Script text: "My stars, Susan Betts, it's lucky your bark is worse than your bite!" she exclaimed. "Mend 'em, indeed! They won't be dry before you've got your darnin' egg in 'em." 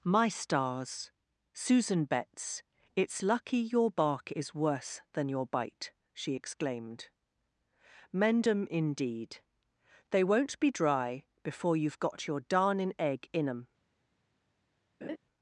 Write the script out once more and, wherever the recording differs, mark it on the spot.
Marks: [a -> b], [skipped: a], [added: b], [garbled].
"My stars, Susan Betts, it's lucky your bark is worse than your bite!" she exclaimed. "Mend 'em, indeed! They won't be dry before you've got your darnin' egg in 'em."